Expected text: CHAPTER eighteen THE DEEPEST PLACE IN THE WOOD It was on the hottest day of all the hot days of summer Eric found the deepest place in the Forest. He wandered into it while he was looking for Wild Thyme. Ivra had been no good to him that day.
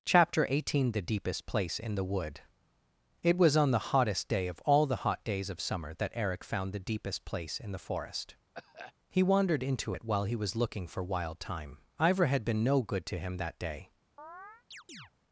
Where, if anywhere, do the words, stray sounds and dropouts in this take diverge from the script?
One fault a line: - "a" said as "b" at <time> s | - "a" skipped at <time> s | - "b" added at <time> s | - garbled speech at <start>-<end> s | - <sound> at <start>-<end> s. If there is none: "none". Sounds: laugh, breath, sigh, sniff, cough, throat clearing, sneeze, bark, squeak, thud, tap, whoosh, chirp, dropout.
- "that" added at 5.9 s
- cough at 8.5-8.9 s
- chirp at 14.2-15.1 s